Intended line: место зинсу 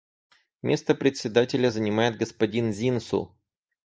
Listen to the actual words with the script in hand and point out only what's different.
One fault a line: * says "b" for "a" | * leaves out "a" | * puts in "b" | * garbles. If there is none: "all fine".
* puts in "председателя занимает господин"